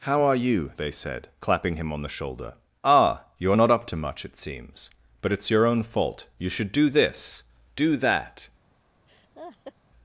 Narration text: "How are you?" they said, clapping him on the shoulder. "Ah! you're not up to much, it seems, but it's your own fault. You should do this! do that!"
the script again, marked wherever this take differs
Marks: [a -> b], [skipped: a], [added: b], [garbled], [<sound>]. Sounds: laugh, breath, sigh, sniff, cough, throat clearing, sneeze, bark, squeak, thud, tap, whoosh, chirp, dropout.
"How are you?" they said, clapping him on the shoulder. "Ah! you're not up to much, it seems, but it's your own fault. You should do this! do that!" [laugh]